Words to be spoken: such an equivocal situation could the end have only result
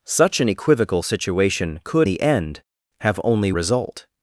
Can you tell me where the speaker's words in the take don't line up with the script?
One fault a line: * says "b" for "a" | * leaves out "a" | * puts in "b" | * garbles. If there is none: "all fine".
all fine